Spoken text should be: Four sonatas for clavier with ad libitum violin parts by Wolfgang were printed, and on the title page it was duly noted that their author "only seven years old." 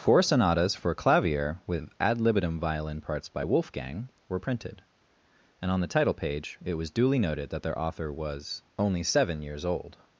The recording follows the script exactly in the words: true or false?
false